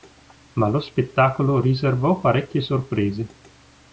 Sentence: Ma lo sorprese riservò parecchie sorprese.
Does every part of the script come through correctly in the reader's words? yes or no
no